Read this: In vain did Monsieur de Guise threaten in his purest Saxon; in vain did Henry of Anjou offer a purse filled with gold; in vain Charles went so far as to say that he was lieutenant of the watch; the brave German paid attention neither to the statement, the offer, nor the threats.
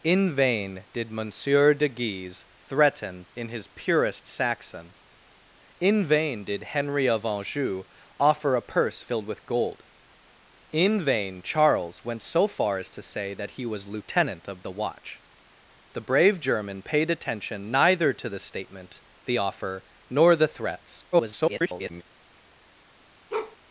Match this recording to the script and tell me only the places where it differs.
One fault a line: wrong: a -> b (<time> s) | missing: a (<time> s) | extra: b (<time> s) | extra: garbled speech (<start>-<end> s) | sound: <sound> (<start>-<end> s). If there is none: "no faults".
extra: garbled speech (21.1-22.0 s)
sound: bark (23.3-23.6 s)